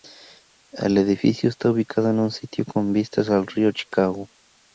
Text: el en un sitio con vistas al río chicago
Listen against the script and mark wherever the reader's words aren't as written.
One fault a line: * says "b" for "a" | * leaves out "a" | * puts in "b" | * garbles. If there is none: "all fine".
* puts in "edificio está ubicado"